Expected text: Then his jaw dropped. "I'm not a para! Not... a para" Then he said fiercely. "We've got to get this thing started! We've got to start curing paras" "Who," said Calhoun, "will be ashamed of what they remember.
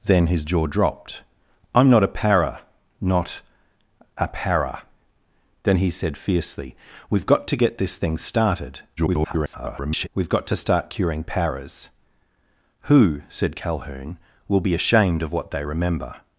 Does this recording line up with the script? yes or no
no